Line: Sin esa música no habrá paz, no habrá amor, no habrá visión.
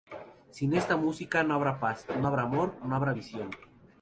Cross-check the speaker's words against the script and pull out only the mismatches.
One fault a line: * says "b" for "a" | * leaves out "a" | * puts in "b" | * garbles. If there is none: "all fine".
* says "esta" for "esa"